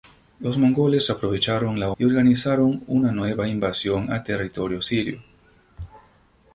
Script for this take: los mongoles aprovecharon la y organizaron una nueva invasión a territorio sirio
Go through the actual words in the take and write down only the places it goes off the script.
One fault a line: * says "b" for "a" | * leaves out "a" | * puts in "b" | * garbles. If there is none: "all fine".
all fine